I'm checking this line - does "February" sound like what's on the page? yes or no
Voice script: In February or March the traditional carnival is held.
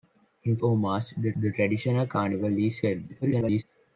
no